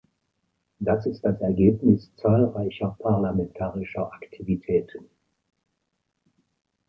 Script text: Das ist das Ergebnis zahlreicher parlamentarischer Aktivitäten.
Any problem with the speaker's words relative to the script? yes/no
no